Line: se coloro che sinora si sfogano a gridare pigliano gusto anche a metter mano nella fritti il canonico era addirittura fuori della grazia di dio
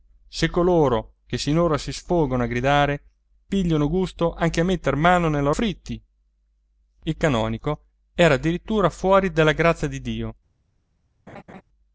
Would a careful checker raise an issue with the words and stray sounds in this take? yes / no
yes